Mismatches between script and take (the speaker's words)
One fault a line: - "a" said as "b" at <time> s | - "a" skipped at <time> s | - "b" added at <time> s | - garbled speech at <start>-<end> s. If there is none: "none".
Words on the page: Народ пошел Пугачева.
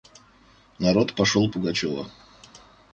none